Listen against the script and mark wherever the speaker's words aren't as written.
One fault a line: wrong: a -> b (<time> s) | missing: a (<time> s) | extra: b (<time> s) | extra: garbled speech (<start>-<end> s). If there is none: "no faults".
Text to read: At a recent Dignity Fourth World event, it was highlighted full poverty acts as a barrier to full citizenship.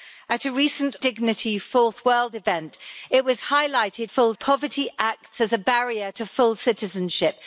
no faults